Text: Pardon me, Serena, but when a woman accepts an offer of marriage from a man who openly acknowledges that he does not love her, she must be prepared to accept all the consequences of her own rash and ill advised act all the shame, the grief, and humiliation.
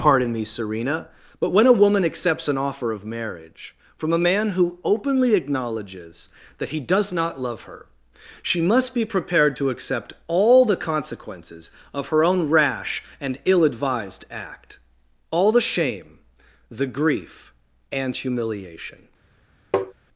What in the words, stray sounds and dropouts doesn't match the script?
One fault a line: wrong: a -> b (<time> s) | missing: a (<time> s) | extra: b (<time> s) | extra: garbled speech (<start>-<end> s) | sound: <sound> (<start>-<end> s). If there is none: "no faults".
sound: tap (19.7-19.9 s)